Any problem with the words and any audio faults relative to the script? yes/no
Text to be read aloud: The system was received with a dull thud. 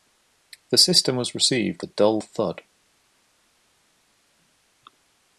yes